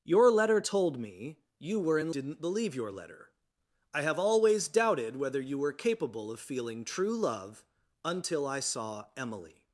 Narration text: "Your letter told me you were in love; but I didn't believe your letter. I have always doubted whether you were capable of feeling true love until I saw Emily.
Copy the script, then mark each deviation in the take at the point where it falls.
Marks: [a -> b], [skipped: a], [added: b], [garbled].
"Your letter told me you were in [skipped: love; but I] didn't believe your letter. I have always doubted whether you were capable of feeling true love until I saw Emily.